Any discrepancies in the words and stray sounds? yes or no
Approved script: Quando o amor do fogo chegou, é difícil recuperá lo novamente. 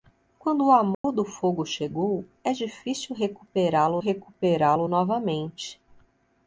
yes